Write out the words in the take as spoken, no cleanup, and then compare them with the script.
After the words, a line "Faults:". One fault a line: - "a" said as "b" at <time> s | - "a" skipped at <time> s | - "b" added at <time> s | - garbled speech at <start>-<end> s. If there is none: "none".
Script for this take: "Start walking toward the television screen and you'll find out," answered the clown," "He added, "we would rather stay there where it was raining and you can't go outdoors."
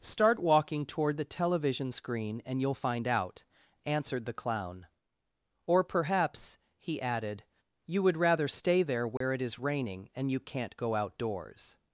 "Start walking toward the television screen and you'll find out," answered the clown. "Or perhaps," he added, "you would rather stay there where it is raining and you can't go outdoors."
Faults:
- "Or perhaps" added at 5.7 s
- "we" said as "you" at 7.9 s
- "was" said as "is" at 9.4 s